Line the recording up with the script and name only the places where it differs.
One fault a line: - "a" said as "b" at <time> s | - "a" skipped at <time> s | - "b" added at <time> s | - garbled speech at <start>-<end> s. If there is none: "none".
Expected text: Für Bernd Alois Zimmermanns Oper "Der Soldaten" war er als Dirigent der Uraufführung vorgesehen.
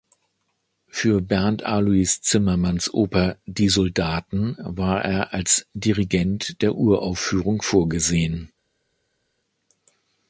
- "Der" said as "Die" at 3.5 s